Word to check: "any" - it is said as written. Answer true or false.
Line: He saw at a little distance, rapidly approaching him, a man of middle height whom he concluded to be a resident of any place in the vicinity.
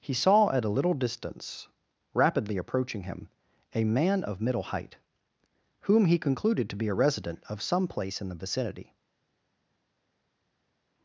false